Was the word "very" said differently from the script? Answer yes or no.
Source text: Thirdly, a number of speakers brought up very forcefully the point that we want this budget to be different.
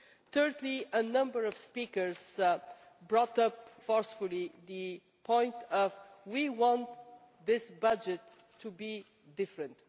yes